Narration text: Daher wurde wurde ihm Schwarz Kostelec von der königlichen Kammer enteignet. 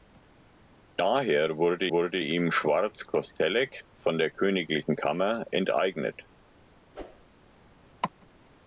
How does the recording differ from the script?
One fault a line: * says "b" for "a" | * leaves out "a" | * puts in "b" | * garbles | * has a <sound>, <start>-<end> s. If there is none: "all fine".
* has a whoosh, 6.9-7.3 s